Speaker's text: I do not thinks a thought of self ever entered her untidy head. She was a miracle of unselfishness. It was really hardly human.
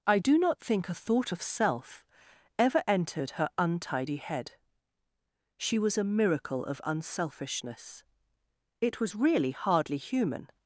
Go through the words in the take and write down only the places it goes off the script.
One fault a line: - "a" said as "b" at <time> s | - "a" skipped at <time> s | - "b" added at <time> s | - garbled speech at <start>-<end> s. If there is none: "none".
- "thinks" said as "think" at 0.6 s